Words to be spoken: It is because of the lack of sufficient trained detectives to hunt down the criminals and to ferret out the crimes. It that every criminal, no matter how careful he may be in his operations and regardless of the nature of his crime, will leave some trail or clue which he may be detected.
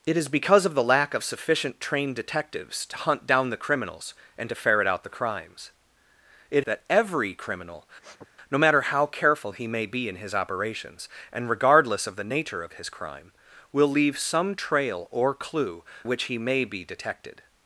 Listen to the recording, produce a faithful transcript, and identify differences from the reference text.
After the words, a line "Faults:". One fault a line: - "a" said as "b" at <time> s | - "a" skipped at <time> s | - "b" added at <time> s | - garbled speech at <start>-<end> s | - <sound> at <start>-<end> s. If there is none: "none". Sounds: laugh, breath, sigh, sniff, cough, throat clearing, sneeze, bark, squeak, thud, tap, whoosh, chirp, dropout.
It is because of the lack of sufficient trained detectives to hunt down the criminals and to ferret out the crimes. It that every criminal, no matter how careful he may be in his operations and regardless of the nature of his crime, will leave some trail or clue which he may be detected.
Faults:
- sniff at 8.0-8.3 s